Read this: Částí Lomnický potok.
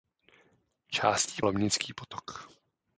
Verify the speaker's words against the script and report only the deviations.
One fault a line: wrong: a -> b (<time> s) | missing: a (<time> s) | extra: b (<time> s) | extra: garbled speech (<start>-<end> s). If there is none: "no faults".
no faults